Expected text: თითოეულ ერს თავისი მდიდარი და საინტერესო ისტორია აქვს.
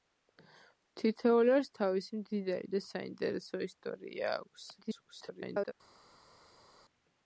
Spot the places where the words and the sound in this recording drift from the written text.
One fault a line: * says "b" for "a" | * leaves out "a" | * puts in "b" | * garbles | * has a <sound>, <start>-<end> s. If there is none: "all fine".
* garbles